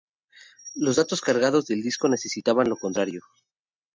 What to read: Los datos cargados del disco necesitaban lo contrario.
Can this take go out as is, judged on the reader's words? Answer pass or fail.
pass